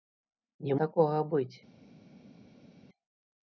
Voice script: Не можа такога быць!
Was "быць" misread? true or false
false